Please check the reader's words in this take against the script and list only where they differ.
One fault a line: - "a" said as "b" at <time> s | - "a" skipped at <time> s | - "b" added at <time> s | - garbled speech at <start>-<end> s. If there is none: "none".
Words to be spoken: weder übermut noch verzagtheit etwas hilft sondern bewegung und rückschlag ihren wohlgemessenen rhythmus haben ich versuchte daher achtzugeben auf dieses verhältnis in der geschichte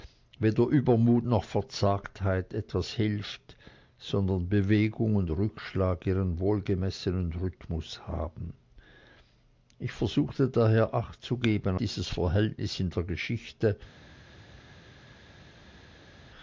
- "auf" skipped at 11.8 s